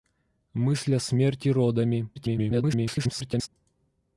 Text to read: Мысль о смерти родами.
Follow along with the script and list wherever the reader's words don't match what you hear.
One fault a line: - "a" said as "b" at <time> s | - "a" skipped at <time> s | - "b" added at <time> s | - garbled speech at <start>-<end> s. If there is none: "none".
- garbled speech at 2.1-3.5 s